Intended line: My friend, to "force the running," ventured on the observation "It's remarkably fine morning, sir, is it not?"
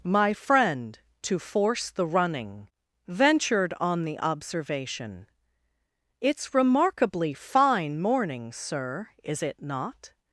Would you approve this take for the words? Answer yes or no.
yes